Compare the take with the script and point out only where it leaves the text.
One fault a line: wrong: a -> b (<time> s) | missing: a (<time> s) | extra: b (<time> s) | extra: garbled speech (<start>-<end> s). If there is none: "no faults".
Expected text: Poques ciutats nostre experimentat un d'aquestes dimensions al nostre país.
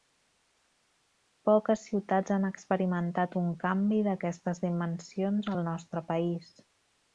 wrong: nostre -> han (2.4 s)
extra: canvi (3.6 s)